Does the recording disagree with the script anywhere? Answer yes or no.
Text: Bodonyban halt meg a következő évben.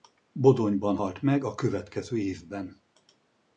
no